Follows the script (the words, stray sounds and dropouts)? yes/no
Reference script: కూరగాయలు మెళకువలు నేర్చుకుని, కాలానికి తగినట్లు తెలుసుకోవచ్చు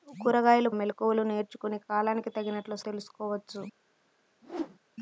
no